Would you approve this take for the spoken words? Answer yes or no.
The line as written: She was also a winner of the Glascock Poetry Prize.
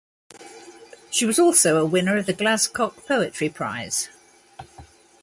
yes